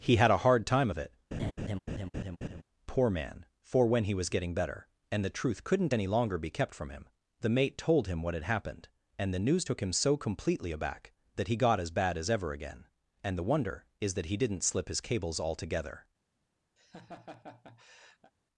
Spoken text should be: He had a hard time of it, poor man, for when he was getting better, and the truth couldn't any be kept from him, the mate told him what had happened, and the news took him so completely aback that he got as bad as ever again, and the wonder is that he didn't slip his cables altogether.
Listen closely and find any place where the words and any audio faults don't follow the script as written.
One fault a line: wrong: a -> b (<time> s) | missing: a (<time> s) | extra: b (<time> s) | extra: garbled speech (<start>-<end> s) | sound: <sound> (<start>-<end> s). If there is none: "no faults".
sound: laugh (1.3-2.6 s)
extra: longer (6.1 s)
sound: laugh (16.8-18.3 s)